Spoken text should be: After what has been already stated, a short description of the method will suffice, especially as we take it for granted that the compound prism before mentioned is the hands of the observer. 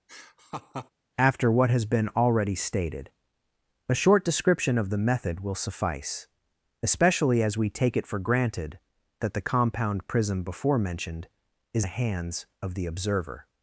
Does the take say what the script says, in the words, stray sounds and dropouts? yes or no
no